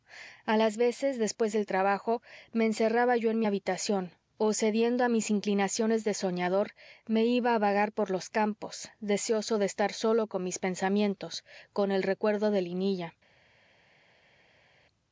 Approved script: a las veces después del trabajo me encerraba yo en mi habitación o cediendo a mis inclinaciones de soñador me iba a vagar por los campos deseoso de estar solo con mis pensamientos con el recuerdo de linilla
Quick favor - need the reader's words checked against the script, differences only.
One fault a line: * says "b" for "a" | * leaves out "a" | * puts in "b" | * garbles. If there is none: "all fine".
all fine